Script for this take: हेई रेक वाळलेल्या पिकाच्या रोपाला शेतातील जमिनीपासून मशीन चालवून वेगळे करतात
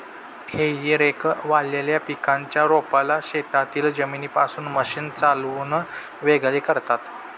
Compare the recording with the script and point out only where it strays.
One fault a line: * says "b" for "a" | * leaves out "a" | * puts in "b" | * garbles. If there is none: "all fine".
all fine